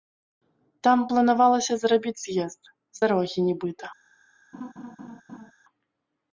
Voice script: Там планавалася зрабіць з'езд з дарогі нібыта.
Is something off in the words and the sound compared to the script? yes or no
yes